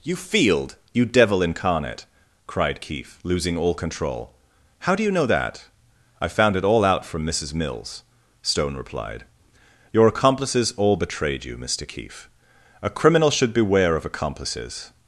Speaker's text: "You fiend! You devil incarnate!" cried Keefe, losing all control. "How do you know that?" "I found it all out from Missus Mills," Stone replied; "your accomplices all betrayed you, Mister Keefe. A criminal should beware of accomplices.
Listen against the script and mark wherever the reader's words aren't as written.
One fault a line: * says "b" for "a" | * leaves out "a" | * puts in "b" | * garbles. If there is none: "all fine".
* says "field" for "fiend"